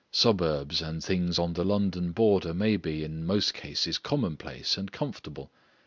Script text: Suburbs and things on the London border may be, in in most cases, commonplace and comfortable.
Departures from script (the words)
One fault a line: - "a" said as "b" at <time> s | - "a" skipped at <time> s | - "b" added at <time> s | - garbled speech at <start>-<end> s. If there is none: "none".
- "in" skipped at 3.3 s